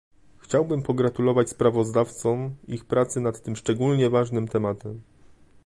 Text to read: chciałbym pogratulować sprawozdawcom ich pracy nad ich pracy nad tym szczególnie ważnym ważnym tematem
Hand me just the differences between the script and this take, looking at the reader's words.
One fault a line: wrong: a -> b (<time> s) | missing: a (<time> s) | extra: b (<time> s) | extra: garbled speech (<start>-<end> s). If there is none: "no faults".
missing: ich pracy nad (3.4 s)
missing: ważnym (4.5 s)